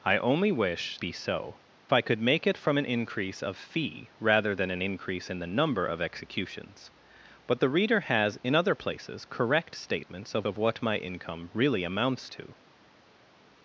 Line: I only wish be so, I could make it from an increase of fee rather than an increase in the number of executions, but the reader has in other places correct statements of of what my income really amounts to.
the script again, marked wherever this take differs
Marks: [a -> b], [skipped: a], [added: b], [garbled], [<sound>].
I only wish be so, I could make it from an increase of fee rather than an increase in the number of executions, but the reader has in other places correct statements of of what my income really amounts to.